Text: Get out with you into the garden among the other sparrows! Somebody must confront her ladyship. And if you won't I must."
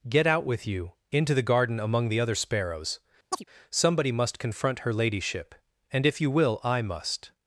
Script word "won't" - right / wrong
wrong